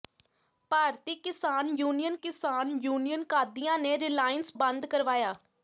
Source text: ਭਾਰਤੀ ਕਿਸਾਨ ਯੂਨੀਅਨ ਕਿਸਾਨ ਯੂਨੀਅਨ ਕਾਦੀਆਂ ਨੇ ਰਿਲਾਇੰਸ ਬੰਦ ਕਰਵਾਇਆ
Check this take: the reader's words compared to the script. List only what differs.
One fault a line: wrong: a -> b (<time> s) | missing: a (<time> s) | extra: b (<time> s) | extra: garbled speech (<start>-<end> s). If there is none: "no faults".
no faults